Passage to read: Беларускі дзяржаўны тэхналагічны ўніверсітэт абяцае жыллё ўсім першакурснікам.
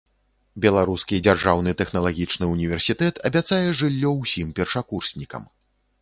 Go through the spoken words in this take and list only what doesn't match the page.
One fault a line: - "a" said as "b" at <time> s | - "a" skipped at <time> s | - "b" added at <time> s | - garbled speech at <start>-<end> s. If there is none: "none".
none